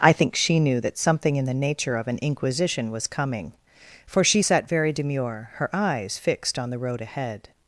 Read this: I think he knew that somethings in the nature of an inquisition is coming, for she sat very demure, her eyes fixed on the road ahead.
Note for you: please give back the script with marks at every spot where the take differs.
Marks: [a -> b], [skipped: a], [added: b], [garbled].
I think [he -> she] knew that [somethings -> something] in the nature of an inquisition [is -> was] coming, for she sat very demure, her eyes fixed on the road ahead.